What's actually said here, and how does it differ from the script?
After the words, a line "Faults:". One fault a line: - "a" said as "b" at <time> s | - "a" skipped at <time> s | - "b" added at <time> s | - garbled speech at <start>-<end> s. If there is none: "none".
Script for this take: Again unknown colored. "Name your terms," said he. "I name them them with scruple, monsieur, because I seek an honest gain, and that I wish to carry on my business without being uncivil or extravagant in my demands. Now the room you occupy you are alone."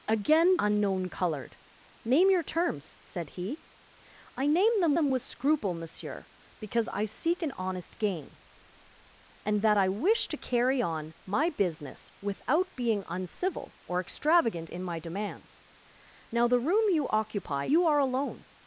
Again unknown colored. "Name your terms," said he. "I name them them with scruple, monsieur, because I seek an honest gain, and that I wish to carry on my business without being uncivil or extravagant in my demands. Now the room you occupy you are alone."
Faults:
none